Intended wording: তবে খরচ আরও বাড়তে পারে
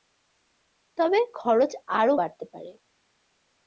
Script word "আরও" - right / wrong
right